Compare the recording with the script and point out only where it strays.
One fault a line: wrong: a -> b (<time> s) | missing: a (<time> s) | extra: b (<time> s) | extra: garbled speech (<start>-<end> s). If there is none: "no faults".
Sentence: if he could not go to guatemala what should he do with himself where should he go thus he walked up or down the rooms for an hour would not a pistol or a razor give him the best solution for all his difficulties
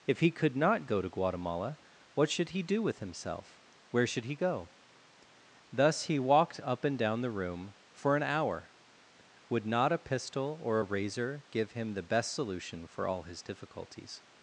wrong: or -> and (6.8 s)
wrong: rooms -> room (7.3 s)